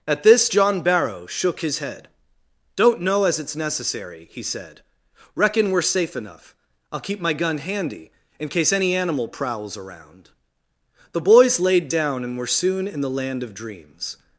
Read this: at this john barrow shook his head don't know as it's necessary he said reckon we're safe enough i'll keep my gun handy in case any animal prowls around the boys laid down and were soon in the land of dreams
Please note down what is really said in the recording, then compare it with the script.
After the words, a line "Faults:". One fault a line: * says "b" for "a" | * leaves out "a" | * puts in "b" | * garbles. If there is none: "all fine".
at this john barrow shook his head don't know as it's necessary he said reckon we're safe enough i'll keep my gun handy in case any animal prowls around the boys laid down and were soon in the land of dreams
Faults:
all fine